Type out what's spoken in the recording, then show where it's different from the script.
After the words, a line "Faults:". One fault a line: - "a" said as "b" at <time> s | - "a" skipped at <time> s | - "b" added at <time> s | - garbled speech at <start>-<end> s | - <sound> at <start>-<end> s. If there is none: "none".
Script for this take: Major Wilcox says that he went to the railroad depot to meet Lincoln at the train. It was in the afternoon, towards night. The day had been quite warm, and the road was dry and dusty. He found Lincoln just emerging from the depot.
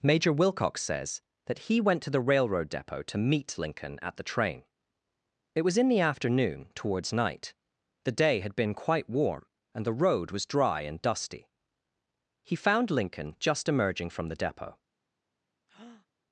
Major Wilcox says that he went to the railroad depot to meet Lincoln at the train. It was in the afternoon, towards night. The day had been quite warm, and the road was dry and dusty. He found Lincoln just emerging from the depot.
Faults:
- breath at 15.7-16.1 s